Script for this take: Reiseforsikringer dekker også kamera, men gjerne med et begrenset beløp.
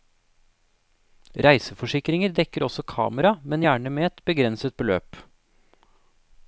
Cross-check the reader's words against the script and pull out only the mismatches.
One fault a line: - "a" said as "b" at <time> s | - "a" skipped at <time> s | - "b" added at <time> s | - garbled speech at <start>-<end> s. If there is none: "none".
none